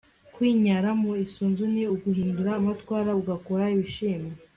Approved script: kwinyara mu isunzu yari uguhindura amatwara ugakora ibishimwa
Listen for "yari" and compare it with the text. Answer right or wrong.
wrong